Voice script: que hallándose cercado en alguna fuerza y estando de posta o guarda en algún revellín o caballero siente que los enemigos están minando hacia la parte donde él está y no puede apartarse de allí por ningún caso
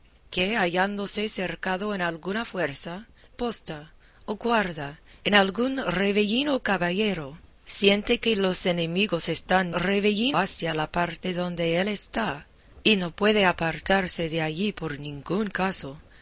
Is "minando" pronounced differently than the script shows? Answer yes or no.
yes